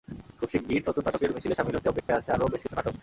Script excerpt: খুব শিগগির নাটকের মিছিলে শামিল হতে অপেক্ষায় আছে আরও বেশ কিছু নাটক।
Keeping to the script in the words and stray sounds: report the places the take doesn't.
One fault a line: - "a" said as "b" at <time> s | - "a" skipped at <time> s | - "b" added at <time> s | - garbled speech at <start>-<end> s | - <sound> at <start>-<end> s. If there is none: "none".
- "নতুন" added at 0.9 s
- dropout at 2.0-2.1 s